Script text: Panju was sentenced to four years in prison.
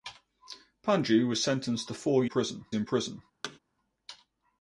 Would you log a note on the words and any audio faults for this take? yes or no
yes